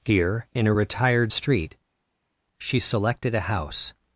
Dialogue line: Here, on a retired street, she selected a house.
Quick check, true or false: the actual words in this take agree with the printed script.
false